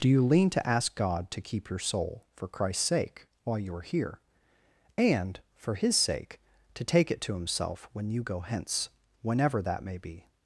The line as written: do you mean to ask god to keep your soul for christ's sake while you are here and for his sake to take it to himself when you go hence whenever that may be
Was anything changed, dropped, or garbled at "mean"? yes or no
yes